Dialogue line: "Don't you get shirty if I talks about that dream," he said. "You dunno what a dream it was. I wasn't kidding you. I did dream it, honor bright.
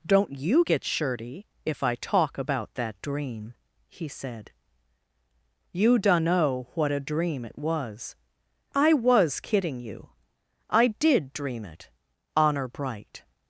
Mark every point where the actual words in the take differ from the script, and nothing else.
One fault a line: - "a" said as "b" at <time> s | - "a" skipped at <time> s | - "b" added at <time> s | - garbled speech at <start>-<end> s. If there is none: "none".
- "talks" said as "talk" at 1.9 s
- "wasn't" said as "was" at 8.9 s